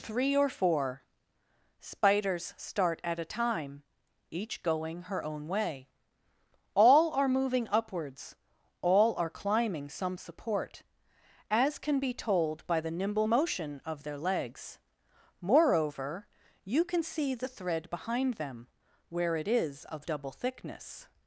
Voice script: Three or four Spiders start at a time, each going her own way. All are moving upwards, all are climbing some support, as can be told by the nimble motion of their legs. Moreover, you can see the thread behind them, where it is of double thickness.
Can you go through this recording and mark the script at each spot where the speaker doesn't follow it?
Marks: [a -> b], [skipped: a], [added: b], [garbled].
Three or four Spiders start at a time, each going her own way. All are moving upwards, all are climbing some support, as can be told by the nimble motion of their legs. Moreover, you can see the thread behind them, where it is of double thickness.